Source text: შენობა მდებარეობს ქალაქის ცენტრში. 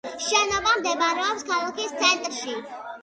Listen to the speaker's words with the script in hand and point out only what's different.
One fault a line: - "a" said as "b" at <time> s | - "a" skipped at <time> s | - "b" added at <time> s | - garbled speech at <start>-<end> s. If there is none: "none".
none